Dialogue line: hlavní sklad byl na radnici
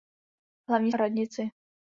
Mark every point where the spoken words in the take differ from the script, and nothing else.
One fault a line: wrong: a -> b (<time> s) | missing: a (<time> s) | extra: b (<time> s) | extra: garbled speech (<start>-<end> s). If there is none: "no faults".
missing: sklad byl na (0.9 s)